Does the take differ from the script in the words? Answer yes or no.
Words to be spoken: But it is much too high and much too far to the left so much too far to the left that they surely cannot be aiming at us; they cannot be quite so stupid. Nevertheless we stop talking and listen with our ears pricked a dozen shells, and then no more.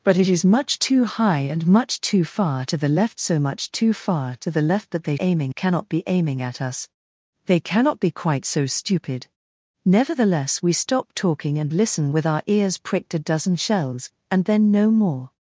yes